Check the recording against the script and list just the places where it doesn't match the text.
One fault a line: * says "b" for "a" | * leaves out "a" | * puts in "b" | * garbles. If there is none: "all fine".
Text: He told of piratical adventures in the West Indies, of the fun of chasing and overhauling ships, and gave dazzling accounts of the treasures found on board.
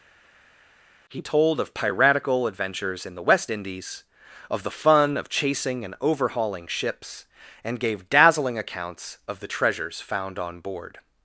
all fine